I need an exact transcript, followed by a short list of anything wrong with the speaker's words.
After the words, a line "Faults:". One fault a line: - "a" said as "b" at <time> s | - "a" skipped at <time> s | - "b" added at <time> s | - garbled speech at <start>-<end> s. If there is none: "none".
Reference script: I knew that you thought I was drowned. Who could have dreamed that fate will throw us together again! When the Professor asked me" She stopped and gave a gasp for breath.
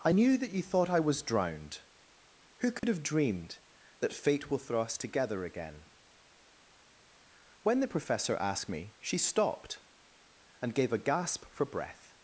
I knew that you thought I was drowned. Who could have dreamed that fate will throw us together again! When the Professor asked me" She stopped and gave a gasp for breath.
Faults:
none